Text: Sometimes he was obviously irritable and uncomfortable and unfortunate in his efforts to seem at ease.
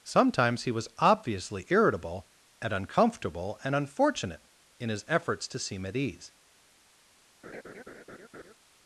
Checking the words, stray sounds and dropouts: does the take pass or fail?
fail